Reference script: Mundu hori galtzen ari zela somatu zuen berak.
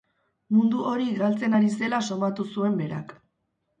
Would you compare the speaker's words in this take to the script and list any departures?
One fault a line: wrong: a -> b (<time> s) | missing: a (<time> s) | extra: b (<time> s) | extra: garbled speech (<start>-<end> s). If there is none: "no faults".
no faults